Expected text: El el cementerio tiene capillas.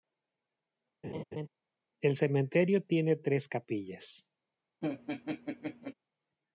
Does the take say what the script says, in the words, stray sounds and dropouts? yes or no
no